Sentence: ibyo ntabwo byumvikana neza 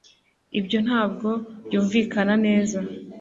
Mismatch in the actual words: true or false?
false